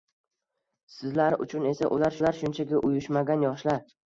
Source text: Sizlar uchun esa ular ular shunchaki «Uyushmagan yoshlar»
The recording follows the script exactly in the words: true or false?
true